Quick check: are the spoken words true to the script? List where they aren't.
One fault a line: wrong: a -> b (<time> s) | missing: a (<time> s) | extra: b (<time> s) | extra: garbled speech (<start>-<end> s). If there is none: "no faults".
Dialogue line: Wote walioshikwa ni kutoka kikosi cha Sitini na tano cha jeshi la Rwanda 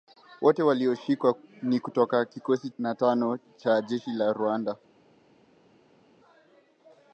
missing: cha Sitini (2.7 s)